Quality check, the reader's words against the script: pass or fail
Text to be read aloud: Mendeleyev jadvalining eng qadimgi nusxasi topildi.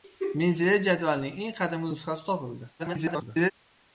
fail